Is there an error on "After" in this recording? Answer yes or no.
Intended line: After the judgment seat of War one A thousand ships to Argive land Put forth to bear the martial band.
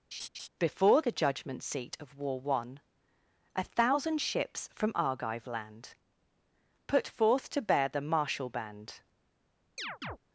yes